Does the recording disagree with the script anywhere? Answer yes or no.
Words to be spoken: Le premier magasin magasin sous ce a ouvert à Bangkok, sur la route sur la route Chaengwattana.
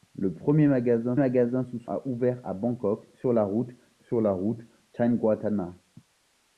no